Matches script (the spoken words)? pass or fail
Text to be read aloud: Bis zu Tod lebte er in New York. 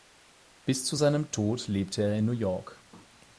fail